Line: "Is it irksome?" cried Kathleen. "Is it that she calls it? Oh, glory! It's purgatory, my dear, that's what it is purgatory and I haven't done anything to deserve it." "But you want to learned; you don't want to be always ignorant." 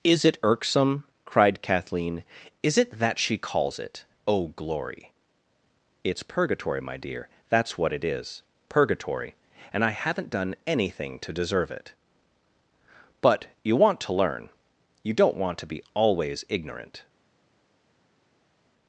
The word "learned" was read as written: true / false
false